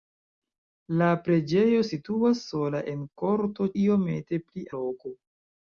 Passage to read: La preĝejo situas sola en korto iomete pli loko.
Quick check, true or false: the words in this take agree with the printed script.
true